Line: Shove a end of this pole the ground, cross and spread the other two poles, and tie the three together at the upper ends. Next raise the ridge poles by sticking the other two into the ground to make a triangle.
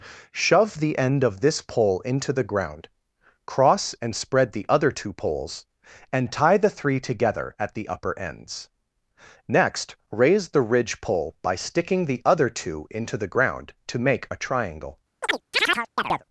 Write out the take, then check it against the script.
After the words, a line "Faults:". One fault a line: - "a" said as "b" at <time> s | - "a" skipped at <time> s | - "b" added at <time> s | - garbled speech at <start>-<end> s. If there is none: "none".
Shove the end of this pole into the ground, cross and spread the other two poles, and tie the three together at the upper ends. Next raise the ridge pole by sticking the other two into the ground to make a triangle.
Faults:
- "a" said as "the" at 0.8 s
- "into" added at 2.0 s
- "poles" said as "pole" at 11.0 s